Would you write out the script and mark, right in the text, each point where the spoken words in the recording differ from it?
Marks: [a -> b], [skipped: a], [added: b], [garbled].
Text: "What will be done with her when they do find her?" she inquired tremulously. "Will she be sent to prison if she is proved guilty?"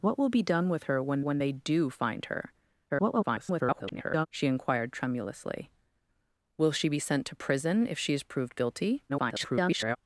"What will be done with her when [added: when] they do find her?" [garbled] she inquired tremulously. "Will she be sent to prison if she is proved guilty?" [garbled]